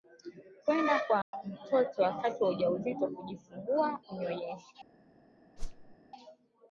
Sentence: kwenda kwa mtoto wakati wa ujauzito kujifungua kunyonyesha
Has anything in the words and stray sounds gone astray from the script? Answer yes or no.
yes